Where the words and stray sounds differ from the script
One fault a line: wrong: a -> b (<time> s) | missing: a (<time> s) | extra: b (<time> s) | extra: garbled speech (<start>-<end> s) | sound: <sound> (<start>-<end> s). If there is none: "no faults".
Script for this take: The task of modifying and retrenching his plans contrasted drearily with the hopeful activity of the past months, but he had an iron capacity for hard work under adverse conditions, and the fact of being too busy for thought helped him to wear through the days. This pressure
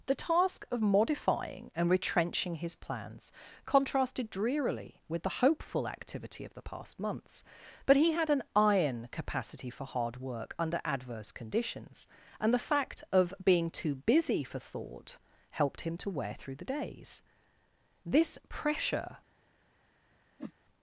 sound: whoosh (20.4-20.5 s)